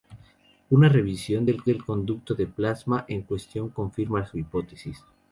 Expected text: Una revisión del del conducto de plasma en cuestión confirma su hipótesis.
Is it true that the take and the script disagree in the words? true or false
false